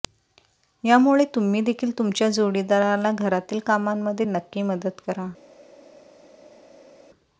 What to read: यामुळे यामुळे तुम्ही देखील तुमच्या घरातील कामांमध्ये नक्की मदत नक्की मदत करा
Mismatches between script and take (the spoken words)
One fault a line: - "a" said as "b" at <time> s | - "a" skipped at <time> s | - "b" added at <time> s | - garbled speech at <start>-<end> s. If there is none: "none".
- "यामुळे" skipped at 1.2 s
- "जोडीदाराला" added at 2.3 s
- "नक्की मदत" skipped at 5.0 s